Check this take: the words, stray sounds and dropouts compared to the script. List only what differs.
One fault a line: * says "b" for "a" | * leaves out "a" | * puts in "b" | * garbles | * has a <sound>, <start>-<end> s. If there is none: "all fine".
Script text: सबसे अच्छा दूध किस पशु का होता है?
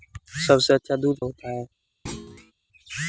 * leaves out "किस पशु का"
* has a thud, 2.1-2.5 s